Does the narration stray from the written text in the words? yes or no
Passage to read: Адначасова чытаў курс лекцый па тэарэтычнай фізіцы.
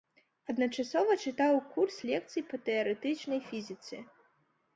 no